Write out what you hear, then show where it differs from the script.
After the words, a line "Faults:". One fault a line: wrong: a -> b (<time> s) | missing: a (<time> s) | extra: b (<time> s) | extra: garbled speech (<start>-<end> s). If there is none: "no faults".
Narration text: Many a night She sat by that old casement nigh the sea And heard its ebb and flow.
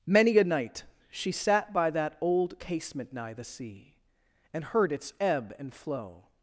Many a night She sat by that old casement nigh the sea And heard its ebb and flow.
Faults:
no faults